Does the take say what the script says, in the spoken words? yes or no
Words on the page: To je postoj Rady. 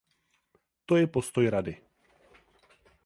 yes